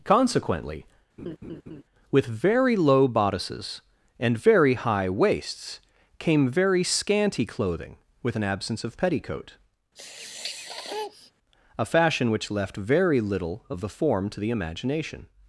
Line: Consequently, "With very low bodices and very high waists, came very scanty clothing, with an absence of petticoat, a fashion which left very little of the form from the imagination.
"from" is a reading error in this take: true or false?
true